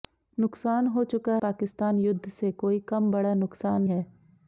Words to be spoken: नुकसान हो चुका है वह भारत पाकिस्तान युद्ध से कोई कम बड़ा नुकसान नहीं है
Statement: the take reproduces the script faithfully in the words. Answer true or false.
false